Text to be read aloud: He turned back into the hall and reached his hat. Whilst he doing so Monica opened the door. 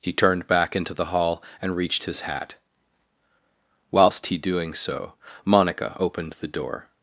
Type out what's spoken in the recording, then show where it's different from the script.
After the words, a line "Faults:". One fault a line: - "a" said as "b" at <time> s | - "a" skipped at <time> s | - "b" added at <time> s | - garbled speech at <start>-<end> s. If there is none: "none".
He turned back into the hall and reached his hat. Whilst he doing so Monica opened the door.
Faults:
none